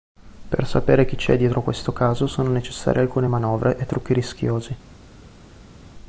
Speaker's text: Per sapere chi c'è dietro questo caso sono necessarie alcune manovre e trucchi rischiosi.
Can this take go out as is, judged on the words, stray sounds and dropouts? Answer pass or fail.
pass